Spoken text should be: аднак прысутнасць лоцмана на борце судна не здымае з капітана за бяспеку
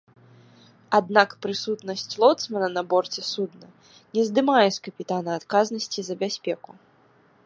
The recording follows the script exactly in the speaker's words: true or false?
false